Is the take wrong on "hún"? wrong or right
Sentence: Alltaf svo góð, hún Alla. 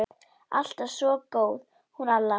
right